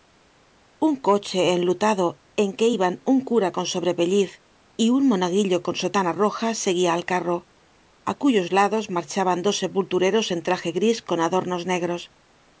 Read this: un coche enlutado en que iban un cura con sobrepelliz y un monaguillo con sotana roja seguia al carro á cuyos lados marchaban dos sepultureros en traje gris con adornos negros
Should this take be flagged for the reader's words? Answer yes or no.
no